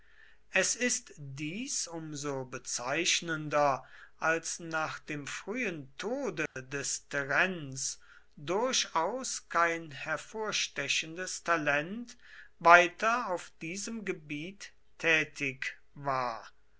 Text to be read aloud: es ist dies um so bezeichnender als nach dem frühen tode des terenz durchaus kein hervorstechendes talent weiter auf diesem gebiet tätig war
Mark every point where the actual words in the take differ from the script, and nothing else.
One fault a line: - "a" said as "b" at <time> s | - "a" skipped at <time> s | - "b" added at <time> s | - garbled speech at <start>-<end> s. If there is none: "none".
none